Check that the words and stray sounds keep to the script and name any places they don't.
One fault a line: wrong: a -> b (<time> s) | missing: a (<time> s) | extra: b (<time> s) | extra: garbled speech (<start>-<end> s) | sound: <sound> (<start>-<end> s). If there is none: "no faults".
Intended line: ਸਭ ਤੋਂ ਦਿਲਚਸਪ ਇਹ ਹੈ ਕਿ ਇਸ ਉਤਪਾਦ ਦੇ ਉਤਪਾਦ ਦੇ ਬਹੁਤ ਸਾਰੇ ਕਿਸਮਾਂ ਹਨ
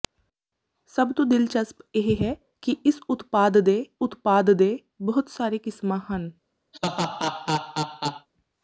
sound: laugh (6.7-8.3 s)